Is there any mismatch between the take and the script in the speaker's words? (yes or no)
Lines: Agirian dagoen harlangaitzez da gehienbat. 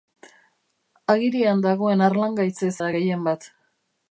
no